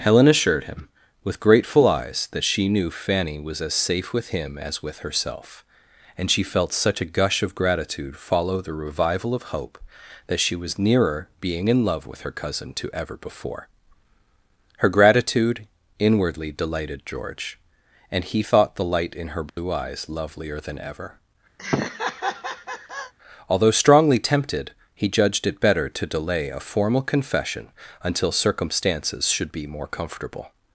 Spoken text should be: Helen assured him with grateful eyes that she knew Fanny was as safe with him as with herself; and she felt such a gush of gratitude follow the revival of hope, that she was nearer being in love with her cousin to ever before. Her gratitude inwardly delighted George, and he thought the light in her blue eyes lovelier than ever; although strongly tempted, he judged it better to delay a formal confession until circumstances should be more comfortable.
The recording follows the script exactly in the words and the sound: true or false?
false